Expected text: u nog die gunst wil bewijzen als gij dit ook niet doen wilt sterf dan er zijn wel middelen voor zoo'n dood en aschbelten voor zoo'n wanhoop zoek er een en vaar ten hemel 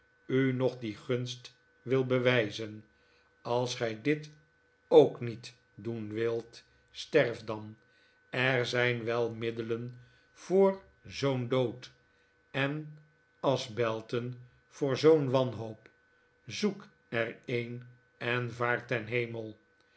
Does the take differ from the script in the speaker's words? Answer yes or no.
no